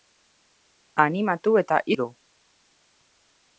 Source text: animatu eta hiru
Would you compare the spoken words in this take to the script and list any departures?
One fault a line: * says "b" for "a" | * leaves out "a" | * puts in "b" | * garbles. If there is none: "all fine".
all fine